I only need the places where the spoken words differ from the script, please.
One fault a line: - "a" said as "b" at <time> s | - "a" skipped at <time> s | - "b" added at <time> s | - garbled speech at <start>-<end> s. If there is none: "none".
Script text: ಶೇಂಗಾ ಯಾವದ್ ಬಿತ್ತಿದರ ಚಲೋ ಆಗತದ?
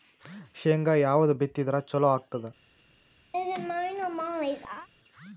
none